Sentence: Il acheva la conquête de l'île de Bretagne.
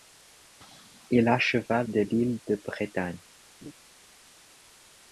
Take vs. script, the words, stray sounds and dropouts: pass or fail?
fail